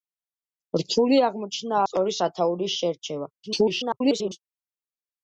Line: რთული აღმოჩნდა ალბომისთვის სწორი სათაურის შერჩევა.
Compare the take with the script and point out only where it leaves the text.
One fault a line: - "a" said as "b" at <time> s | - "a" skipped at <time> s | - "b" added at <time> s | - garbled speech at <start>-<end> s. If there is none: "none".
- "ალბომისთვის" skipped at 1.8 s
- garbled speech at 3.4-4.4 s